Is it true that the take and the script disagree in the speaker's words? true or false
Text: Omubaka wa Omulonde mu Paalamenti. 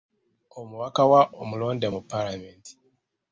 false